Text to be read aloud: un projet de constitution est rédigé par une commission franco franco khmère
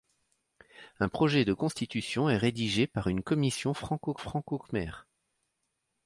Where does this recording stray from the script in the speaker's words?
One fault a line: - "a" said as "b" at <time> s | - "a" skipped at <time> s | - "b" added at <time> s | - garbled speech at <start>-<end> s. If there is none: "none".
none